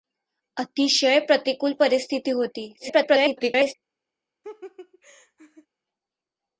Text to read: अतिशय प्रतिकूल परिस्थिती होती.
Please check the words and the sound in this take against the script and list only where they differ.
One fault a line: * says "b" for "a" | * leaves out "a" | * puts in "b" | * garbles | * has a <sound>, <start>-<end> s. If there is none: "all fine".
* garbles
* has a laugh, 4.4-5.7 s